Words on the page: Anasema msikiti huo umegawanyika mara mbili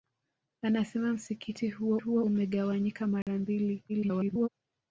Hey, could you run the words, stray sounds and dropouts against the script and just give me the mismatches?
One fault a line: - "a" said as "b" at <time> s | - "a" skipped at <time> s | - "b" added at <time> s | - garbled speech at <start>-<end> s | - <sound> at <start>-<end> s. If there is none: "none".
- "huo" added at 2.0 s
- dropout at 3.2-3.3 s
- garbled speech at 3.9-4.5 s